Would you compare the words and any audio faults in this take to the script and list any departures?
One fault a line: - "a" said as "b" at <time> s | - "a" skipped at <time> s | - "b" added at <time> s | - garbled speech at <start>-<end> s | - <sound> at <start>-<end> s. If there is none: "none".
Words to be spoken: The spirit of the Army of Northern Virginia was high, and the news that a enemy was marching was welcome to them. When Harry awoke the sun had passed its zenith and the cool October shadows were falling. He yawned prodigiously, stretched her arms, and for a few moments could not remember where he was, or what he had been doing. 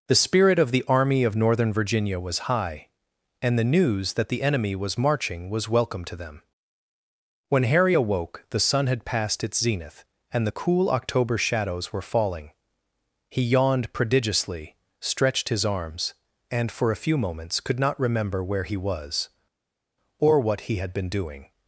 - "a" said as "the" at 4.3 s
- "her" said as "his" at 15.5 s